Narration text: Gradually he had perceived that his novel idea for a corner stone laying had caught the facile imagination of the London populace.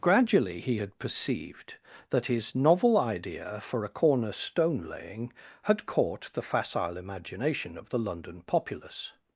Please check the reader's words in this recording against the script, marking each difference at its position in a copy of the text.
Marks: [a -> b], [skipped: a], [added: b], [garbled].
Gradually he had perceived that his novel idea for a corner stone laying had caught the facile imagination of the London populace.